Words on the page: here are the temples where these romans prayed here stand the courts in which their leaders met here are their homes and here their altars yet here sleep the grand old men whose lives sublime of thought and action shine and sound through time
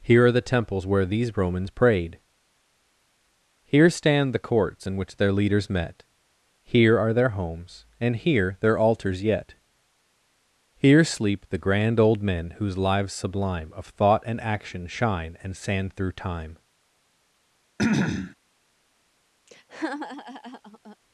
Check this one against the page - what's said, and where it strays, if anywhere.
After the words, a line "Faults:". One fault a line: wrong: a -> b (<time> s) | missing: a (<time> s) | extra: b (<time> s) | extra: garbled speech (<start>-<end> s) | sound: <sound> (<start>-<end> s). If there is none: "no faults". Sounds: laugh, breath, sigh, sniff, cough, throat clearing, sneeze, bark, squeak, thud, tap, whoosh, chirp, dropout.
here are the temples where these romans prayed here stand the courts in which their leaders met here are their homes and here their altars yet here sleep the grand old men whose lives sublime of thought and action shine and sand through time
Faults:
wrong: sound -> sand (15.5 s)
sound: throat clearing (17.8-18.4 s)
sound: laugh (19.5-21.0 s)